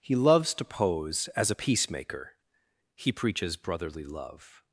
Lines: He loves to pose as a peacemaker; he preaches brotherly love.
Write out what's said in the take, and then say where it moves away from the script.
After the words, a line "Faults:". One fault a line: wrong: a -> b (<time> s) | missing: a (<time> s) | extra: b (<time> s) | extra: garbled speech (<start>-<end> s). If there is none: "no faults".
He loves to pose as a peacemaker; he preaches brotherly love.
Faults:
no faults